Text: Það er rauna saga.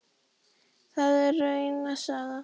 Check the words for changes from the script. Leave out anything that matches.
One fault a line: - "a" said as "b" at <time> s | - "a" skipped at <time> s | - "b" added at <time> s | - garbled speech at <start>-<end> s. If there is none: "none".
none